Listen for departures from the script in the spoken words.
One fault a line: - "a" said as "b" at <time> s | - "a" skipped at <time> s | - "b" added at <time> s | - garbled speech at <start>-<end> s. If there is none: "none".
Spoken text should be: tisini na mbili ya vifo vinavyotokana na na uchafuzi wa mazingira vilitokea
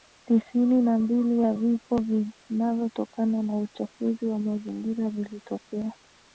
- "na" skipped at 3.6 s